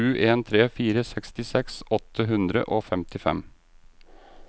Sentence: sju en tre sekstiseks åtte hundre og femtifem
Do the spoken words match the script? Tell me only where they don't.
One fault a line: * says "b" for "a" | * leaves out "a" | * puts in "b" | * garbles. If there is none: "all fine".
* puts in "fire"